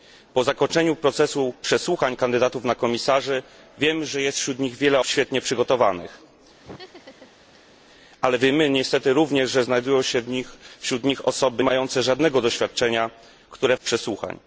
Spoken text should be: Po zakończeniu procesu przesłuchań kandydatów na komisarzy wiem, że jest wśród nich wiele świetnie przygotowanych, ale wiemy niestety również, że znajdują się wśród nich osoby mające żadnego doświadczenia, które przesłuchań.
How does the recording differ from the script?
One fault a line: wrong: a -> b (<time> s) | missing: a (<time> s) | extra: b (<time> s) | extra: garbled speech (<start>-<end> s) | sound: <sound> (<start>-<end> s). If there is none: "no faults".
sound: laugh (6.6-7.7 s)